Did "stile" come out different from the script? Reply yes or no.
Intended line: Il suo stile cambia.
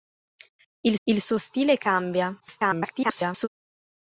no